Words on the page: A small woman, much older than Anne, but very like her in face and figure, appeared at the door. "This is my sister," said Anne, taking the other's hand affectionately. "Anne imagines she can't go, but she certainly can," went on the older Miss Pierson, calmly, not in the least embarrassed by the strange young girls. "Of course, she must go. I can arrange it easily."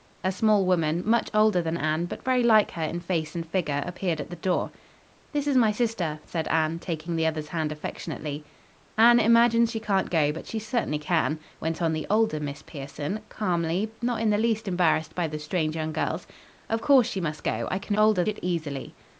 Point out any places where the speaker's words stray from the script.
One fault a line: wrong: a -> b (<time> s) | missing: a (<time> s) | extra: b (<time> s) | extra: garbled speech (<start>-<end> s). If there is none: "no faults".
wrong: arrange -> older (17.9 s)